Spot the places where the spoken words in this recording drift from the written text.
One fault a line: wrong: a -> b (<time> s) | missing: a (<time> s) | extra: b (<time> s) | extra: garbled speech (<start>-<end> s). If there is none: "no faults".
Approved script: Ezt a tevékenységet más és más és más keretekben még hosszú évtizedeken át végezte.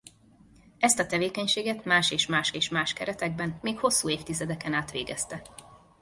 no faults